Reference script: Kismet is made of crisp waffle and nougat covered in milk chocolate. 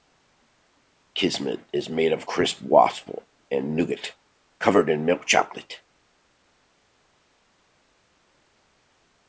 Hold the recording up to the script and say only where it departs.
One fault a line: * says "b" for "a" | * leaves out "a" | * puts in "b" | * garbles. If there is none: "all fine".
all fine